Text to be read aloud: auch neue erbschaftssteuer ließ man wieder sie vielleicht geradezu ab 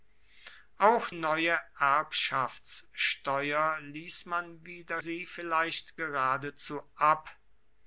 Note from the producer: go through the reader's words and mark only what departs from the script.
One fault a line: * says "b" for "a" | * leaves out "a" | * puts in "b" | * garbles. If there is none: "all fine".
all fine